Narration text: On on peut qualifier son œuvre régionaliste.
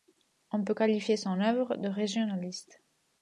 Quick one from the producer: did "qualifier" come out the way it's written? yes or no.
yes